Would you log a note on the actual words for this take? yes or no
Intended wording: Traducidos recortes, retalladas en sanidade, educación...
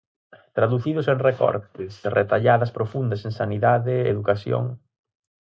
yes